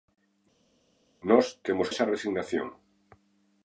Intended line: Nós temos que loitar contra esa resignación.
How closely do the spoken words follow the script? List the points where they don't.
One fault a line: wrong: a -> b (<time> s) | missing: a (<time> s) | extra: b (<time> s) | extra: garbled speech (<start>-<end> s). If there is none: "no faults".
missing: que loitar contra (1.9 s)